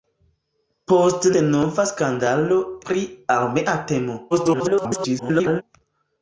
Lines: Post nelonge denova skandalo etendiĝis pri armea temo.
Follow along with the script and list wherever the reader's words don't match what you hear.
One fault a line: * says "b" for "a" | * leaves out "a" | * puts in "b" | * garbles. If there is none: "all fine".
* leaves out "nelonge"
* leaves out "etendiĝis"
* garbles